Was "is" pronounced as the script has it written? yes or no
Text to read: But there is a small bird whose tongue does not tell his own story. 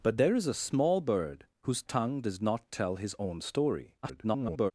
yes